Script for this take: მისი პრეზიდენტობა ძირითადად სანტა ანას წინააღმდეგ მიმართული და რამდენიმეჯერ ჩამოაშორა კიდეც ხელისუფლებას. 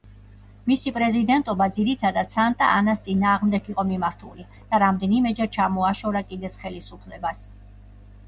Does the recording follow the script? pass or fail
fail